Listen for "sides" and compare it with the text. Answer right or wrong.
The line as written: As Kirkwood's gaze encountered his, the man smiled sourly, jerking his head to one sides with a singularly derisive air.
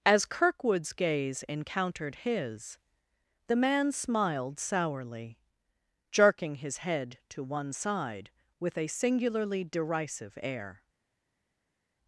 wrong